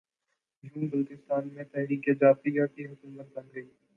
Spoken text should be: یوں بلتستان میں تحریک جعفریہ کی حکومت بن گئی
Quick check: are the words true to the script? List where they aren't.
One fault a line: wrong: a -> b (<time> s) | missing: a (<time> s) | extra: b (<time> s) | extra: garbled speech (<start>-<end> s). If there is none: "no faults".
no faults